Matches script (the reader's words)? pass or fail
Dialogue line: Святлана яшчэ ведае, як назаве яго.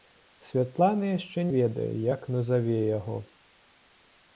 pass